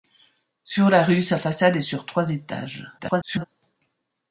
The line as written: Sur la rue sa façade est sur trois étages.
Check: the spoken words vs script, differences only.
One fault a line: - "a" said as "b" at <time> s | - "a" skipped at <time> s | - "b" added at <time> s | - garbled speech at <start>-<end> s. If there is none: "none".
- garbled speech at 3.0-3.4 s